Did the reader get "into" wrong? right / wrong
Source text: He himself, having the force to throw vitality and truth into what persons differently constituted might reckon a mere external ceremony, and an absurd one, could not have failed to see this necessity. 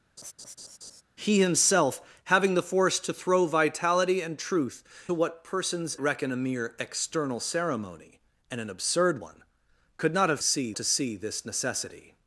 wrong